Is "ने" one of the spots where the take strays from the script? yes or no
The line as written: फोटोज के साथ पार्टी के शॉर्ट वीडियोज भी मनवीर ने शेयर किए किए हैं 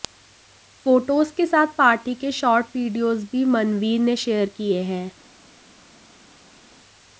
no